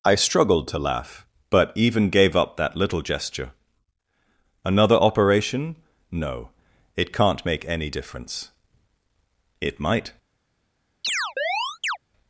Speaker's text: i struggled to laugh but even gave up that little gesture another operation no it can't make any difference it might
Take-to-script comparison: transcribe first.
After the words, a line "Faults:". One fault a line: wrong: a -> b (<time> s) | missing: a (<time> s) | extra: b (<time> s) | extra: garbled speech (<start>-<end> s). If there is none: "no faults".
i struggled to laugh but even gave up that little gesture another operation no it can't make any difference it might
Faults:
no faults